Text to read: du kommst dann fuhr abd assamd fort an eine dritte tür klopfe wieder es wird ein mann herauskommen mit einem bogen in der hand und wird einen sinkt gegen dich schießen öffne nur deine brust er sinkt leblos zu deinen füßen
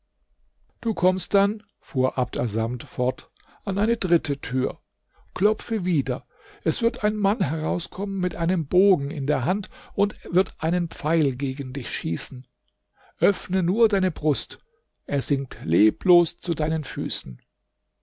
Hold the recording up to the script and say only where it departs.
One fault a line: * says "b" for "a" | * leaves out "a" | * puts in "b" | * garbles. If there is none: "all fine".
* says "pfeil" for "sinkt"